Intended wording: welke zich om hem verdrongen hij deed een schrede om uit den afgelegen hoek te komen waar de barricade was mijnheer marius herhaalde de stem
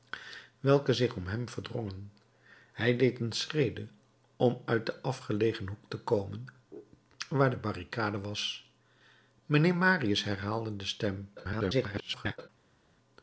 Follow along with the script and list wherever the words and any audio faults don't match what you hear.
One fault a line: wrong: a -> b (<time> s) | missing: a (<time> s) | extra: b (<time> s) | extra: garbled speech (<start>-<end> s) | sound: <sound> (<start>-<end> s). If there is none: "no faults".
extra: garbled speech (11.4-12.5 s)